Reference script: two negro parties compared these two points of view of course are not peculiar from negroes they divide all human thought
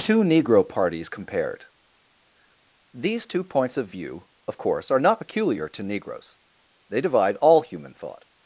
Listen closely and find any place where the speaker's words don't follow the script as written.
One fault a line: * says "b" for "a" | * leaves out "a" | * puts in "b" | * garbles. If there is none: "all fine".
* says "to" for "from"